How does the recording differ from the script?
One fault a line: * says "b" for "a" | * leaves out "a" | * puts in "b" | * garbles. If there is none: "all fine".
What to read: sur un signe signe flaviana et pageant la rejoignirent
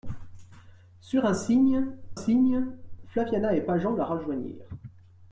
all fine